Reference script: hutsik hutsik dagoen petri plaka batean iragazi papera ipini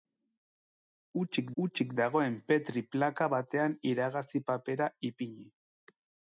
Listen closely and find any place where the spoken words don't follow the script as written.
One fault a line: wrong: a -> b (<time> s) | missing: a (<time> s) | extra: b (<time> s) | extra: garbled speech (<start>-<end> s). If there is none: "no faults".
no faults